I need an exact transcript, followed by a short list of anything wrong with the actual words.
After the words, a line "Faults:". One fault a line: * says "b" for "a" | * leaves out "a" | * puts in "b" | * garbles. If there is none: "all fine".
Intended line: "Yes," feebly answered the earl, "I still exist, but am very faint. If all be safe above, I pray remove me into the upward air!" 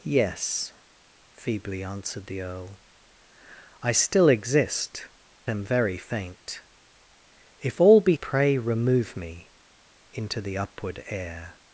"Yes," feebly answered the earl, "I still exist, am very faint. If all be pray remove me into the upward air!"
Faults:
* leaves out "but"
* leaves out "safe above I"